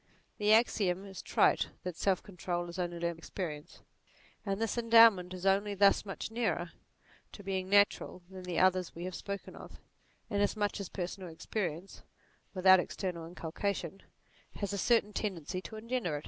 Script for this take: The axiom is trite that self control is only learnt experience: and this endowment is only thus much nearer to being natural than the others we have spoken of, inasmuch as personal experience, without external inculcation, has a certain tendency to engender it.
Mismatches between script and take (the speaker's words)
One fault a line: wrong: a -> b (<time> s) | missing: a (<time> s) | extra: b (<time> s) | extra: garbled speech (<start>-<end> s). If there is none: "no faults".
no faults